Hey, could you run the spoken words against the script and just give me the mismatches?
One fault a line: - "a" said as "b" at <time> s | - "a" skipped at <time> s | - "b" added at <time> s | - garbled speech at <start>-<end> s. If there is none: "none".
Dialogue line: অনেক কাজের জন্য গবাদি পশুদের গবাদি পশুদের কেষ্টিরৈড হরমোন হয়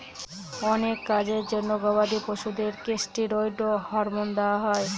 - "গবাদি পশুদের" skipped at 2.7 s
- "দেওয়া" added at 4.4 s